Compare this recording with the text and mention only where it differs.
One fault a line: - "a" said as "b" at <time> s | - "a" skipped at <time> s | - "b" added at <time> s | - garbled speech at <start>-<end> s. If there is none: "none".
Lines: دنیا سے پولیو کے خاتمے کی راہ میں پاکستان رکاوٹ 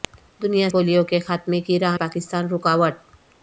- "سے" skipped at 0.7 s
- "میں" skipped at 2.0 s